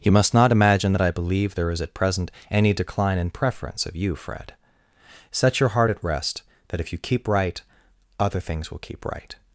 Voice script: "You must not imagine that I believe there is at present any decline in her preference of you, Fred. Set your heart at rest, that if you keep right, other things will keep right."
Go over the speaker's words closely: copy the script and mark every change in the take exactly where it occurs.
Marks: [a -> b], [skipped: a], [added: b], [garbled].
"You must not imagine that I believe there is at present any decline in [skipped: her] preference of you, Fred. Set your heart at rest, that if you keep right, other things will keep right."